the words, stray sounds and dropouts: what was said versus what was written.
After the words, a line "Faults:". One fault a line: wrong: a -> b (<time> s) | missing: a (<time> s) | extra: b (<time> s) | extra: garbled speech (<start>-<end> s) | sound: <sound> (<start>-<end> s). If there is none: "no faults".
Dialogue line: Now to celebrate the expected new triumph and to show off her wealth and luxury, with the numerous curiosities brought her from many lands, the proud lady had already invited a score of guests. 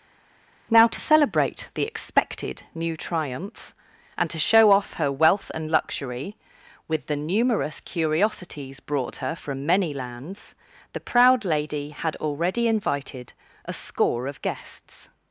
Now to celebrate the expected new triumph and to show off her wealth and luxury, with the numerous curiosities brought her from many lands, the proud lady had already invited a score of guests.
Faults:
no faults